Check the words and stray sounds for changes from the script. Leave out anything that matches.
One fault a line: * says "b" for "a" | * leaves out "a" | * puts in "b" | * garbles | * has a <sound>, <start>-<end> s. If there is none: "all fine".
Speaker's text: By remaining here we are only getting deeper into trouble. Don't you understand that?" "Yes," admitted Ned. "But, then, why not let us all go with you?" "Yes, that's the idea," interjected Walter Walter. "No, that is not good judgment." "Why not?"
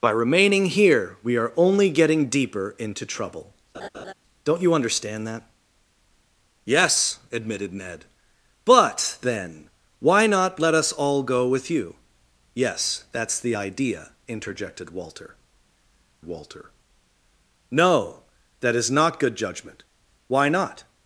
* has a laugh, 3.7-4.1 s